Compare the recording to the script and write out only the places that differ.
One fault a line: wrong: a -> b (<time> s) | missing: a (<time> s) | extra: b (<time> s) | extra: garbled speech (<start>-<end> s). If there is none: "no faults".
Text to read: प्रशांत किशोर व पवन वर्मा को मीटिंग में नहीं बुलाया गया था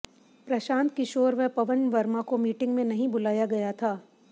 no faults